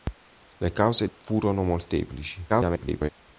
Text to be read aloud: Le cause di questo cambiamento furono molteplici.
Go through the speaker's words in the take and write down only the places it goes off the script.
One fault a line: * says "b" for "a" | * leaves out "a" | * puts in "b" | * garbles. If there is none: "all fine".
* leaves out "di questo cambiamento"
* garbles